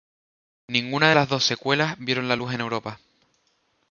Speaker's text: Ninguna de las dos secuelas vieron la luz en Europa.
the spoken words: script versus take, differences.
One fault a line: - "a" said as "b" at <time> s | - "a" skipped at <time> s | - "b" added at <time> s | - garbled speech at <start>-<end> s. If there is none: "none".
none